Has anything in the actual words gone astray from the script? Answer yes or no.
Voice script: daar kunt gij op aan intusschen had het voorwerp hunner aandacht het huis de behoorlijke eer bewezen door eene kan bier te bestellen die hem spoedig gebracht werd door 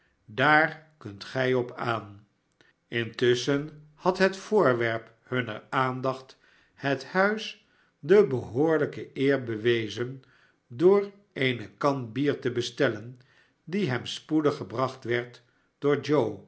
no